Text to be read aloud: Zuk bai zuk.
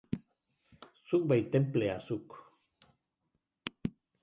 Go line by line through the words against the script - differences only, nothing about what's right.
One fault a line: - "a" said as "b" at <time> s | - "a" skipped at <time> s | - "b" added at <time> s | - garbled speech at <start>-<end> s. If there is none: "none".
- "tenplea" added at 1.6 s